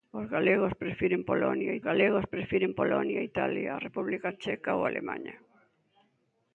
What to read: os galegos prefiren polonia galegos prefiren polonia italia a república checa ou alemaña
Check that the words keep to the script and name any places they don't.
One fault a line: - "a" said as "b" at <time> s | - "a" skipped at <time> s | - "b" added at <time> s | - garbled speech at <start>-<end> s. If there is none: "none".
none